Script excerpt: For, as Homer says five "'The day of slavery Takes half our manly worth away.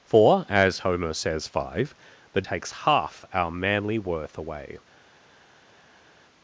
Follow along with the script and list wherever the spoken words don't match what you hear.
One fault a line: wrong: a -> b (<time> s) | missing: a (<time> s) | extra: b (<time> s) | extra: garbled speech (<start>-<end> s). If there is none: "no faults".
missing: day of slavery (2.4 s)